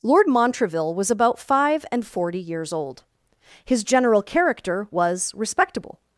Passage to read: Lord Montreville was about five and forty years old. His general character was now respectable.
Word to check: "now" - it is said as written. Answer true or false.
false